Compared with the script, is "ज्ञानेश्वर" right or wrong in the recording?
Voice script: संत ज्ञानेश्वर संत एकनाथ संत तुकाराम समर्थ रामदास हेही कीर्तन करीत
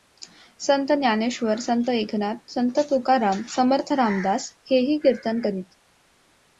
right